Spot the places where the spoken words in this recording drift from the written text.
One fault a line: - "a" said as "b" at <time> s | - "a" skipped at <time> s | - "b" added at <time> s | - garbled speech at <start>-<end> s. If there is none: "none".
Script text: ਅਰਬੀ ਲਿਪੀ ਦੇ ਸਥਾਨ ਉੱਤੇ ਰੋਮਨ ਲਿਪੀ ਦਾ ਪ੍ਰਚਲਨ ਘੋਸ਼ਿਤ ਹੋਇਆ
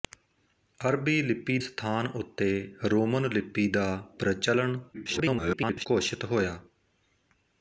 - "ਦੇ" skipped at 1.6 s
- garbled speech at 4.9-5.9 s